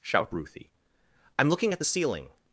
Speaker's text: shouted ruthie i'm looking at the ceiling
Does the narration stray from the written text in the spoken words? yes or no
yes